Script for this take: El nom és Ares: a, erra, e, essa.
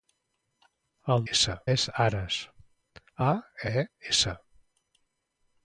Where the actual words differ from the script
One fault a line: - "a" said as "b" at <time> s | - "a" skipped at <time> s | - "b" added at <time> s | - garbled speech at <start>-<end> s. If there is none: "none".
- "nom" said as "essa" at 1.3 s
- "erra" skipped at 3.3 s